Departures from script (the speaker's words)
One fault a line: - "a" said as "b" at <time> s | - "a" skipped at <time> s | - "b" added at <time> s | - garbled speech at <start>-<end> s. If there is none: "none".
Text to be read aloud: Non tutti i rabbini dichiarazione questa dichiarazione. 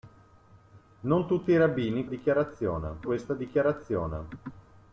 none